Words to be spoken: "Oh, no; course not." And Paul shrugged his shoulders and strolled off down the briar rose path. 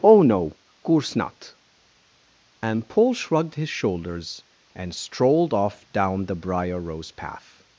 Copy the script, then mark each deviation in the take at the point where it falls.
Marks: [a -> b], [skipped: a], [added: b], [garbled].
"Oh, no; course not." And Paul shrugged his shoulders and strolled off down the briar rose path.